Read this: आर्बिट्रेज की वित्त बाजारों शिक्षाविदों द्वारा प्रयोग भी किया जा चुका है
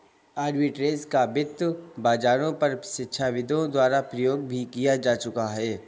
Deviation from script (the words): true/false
true